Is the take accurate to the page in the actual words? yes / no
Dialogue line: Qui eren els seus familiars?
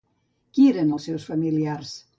yes